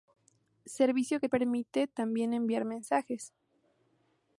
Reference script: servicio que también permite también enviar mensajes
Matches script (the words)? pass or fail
fail